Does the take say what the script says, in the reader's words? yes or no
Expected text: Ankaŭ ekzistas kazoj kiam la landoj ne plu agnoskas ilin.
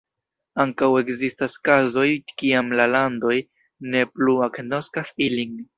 yes